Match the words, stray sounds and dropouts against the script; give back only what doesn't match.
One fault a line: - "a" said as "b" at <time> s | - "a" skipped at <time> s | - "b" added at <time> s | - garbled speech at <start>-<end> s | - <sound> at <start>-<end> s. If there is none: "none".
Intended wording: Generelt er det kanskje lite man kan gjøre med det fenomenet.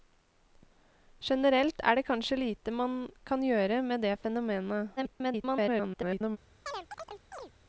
- garbled speech at 5.0-6.4 s
- chirp at 6.7-7.5 s